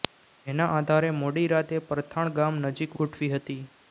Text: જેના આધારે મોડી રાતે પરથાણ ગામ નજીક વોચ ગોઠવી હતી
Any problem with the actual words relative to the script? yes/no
yes